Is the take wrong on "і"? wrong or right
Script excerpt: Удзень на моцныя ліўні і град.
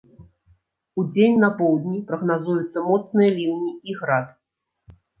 right